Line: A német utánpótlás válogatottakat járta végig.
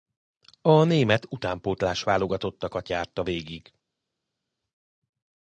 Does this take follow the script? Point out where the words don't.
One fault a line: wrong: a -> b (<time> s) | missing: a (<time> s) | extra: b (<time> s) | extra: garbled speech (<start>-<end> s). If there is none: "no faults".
no faults